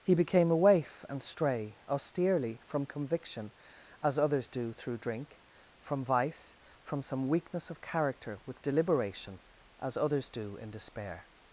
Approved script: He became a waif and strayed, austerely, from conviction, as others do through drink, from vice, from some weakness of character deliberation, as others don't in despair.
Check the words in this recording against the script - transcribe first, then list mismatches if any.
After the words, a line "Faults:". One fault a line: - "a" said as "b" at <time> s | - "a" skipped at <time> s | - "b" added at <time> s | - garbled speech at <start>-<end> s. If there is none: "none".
He became a waif and stray, austerely, from conviction, as others do through drink, from vice, from some weakness of character with deliberation, as others do in despair.
Faults:
- "strayed" said as "stray" at 1.2 s
- "with" added at 8.5 s
- "don't" said as "do" at 10.3 s